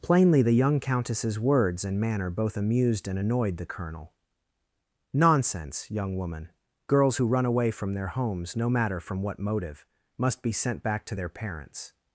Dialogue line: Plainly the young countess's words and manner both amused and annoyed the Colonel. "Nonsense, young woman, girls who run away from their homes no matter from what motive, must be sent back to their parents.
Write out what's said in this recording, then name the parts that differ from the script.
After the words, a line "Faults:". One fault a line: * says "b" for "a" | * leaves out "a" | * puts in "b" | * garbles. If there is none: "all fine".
Plainly the young countess's words and manner both amused and annoyed the Colonel. "Nonsense, young woman, girls who run away from their homes no matter from what motive, must be sent back to their parents.
Faults:
all fine